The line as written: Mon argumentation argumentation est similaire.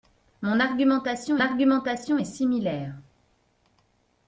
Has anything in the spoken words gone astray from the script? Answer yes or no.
no